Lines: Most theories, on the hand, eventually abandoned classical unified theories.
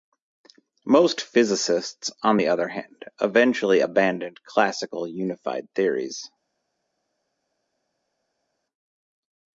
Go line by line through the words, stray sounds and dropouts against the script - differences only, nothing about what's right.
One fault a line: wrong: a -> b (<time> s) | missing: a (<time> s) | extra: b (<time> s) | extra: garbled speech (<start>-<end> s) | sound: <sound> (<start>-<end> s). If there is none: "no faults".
wrong: theories -> physicists (1.2 s)
extra: other (2.5 s)